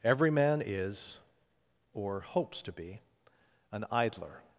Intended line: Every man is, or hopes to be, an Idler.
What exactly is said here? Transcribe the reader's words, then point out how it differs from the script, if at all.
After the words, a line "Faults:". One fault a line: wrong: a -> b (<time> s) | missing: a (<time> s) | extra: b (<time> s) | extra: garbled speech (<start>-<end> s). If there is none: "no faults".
Every man is, or hopes to be, an Idler.
Faults:
no faults